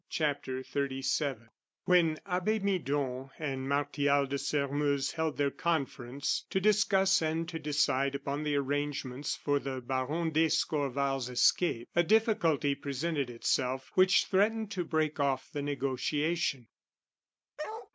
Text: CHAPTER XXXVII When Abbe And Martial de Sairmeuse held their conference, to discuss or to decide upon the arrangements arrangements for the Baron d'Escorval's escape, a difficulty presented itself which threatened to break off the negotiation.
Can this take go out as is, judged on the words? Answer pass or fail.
fail